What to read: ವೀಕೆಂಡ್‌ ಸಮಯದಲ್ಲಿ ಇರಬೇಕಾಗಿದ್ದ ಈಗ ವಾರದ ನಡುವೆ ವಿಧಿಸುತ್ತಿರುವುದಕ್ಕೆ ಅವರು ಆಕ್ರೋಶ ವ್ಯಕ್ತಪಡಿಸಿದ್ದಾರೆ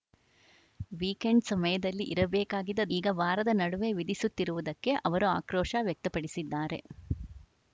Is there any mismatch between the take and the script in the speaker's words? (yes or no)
no